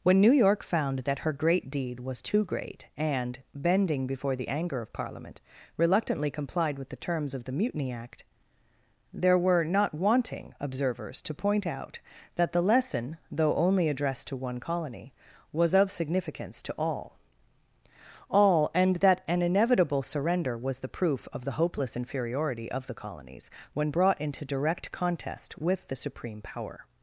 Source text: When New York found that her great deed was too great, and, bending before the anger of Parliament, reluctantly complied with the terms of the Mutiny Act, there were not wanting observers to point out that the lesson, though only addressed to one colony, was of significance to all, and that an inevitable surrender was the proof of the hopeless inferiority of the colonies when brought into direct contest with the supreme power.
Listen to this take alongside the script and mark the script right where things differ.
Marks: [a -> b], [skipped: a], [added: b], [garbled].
When New York found that her great deed was too great, and, bending before the anger of Parliament, reluctantly complied with the terms of the Mutiny Act, there were not wanting observers to point out that the lesson, though only addressed to one colony, was of significance to all, [added: all] and that an inevitable surrender was the proof of the hopeless inferiority of the colonies when brought into direct contest with the supreme power.